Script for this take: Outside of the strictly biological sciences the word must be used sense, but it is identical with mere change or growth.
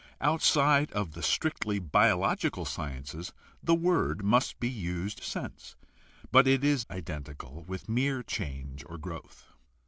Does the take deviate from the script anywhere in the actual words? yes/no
no